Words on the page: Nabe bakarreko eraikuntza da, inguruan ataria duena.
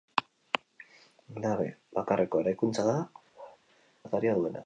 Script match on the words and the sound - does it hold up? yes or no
no